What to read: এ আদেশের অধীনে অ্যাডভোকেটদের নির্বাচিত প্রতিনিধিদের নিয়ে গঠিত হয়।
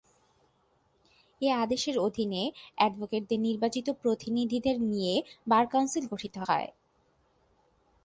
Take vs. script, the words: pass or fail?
fail